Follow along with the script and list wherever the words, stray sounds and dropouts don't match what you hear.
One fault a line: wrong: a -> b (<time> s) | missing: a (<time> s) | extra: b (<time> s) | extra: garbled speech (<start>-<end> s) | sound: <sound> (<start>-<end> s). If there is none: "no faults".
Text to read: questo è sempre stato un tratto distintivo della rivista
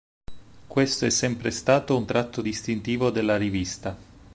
no faults